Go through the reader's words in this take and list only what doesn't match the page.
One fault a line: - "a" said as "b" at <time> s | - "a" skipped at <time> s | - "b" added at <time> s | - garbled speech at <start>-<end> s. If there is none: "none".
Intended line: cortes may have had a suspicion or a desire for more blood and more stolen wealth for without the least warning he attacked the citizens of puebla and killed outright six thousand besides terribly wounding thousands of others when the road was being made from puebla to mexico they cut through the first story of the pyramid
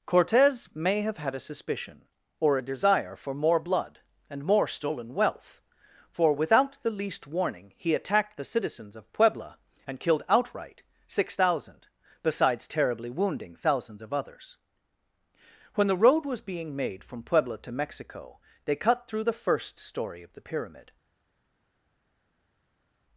none